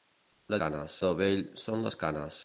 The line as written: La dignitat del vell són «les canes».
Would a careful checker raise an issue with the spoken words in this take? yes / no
yes